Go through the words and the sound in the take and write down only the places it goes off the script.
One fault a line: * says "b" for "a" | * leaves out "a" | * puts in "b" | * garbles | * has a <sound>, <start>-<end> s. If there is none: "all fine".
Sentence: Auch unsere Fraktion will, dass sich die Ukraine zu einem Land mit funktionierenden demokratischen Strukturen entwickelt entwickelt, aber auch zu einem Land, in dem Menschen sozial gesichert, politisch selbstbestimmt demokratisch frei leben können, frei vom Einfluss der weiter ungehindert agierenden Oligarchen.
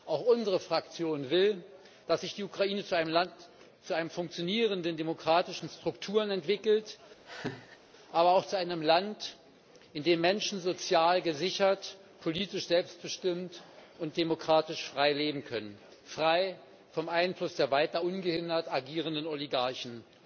* leaves out "entwickelt"
* has a laugh, 7.3-7.8 s
* puts in "und"